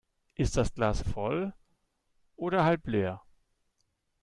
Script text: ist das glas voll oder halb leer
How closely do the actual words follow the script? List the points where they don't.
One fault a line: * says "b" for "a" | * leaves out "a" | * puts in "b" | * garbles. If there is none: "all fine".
all fine